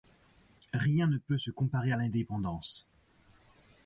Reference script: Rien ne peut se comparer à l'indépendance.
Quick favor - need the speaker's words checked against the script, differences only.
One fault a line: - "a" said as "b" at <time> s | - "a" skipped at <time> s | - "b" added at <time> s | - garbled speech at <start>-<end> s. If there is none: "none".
none